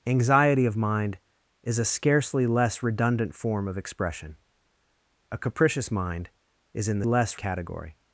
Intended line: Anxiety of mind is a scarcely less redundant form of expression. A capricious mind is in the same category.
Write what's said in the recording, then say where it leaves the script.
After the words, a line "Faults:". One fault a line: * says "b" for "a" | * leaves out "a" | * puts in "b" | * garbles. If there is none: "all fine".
Anxiety of mind is a scarcely less redundant form of expression. A capricious mind is in the less category.
Faults:
* says "less" for "same"